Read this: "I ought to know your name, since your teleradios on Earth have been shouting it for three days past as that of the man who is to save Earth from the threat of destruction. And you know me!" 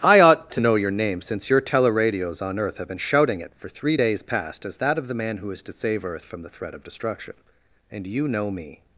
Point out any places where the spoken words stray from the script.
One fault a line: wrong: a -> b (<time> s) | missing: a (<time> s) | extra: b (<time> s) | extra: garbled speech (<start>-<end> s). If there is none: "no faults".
no faults